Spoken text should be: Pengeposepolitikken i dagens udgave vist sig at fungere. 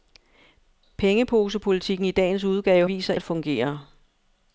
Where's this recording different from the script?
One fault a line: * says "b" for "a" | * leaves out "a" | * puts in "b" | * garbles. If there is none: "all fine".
all fine